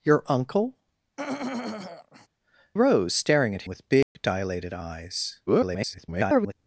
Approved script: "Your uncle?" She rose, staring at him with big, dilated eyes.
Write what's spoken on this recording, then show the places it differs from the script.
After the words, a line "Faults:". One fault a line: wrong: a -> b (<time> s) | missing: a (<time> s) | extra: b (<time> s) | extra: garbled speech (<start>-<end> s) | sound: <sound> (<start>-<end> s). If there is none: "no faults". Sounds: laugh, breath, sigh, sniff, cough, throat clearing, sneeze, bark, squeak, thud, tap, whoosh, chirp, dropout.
"Your uncle?" Rose, staring at with big, dilated eyes. [garbled]
Faults:
missing: She (0.8 s)
sound: throat clearing (1.2-2.3 s)
missing: him (3.7 s)
sound: dropout (4.0-4.2 s)
extra: garbled speech (5.5-6.5 s)